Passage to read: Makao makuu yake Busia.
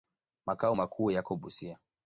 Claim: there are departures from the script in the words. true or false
true